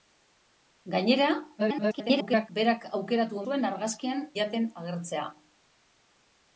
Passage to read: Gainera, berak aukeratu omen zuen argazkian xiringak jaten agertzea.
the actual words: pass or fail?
fail